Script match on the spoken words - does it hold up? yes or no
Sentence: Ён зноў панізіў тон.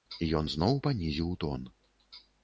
yes